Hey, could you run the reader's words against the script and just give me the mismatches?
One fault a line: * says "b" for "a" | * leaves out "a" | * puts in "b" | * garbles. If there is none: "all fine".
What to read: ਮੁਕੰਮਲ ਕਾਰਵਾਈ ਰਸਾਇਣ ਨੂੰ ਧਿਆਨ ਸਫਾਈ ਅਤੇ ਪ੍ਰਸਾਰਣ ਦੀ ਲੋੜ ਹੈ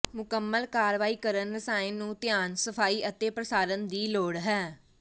* puts in "ਕਰਨ"